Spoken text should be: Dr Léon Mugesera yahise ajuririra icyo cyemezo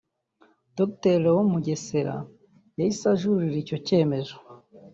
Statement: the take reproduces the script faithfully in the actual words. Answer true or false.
true